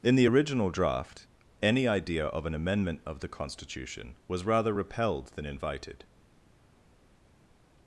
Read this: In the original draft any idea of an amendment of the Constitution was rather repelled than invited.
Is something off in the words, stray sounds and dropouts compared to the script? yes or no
no